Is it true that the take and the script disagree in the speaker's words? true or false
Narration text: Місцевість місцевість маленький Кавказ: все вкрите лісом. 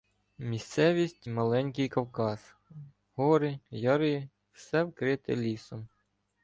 true